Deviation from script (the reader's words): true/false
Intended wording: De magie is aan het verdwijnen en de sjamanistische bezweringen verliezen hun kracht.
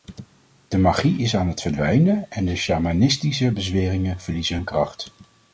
false